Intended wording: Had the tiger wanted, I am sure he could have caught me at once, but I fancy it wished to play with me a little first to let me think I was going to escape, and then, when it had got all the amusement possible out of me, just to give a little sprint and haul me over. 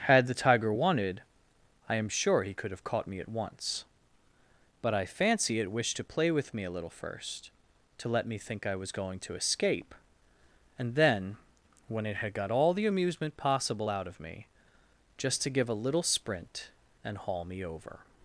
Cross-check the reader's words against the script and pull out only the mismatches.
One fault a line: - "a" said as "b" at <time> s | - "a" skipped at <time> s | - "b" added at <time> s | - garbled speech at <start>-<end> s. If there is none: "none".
none